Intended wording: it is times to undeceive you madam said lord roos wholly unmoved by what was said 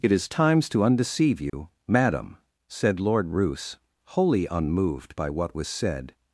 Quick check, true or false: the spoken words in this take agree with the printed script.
true